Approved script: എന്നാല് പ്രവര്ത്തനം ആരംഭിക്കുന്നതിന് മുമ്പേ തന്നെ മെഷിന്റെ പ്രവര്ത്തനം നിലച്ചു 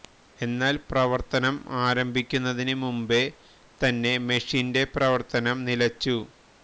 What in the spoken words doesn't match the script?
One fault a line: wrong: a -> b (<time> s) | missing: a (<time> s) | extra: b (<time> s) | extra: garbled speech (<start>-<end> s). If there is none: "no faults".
no faults